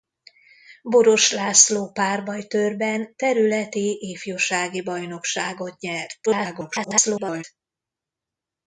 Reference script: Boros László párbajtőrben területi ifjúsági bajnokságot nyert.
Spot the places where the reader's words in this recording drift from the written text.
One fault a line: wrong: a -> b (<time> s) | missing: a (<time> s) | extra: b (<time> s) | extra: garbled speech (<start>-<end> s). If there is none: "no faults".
extra: garbled speech (6.3-7.4 s)